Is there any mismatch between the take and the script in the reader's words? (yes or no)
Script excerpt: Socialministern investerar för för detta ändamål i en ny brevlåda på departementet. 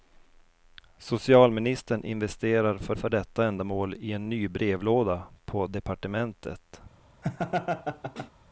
no